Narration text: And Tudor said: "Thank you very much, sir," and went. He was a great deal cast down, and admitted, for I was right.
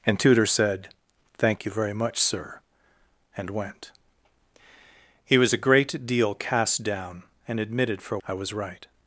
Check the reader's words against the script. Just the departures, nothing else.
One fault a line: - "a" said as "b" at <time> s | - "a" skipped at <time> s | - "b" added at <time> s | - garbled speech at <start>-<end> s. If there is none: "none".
none